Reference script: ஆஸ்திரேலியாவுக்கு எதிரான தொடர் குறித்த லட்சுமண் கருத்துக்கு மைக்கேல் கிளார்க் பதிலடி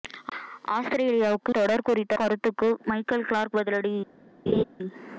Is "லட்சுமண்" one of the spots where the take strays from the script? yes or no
yes